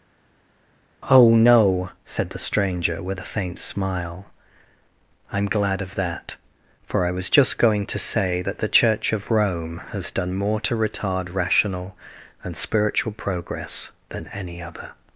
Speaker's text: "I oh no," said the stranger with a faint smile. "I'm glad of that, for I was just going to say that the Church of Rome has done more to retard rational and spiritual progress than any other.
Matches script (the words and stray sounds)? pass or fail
fail